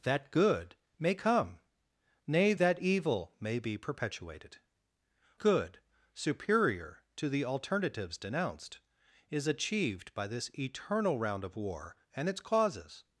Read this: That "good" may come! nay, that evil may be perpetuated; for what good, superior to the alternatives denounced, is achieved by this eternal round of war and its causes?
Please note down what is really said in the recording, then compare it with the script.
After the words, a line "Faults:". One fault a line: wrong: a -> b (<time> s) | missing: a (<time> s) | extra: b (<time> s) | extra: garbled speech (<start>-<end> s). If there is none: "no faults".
That "good" may come! nay, that evil may be perpetuated; good, superior to the alternatives denounced, is achieved by this eternal round of war and its causes?
Faults:
missing: for what (4.6 s)